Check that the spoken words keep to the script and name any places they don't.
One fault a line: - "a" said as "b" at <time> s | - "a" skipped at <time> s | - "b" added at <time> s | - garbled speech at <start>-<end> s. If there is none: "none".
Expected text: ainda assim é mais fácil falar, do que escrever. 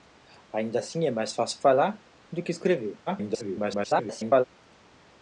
- garbled speech at 3.1-4.4 s